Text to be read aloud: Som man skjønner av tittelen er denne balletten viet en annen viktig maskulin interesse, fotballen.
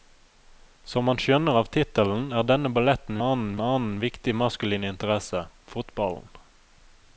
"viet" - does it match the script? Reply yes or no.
no